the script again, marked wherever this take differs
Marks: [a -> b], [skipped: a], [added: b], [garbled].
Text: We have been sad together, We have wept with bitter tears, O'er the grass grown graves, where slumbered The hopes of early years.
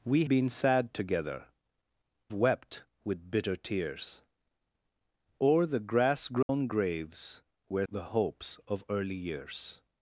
We [skipped: have] been sad together, [skipped: We have] wept with bitter tears, O'er the grass grown graves, where [skipped: slumbered] The hopes of early years.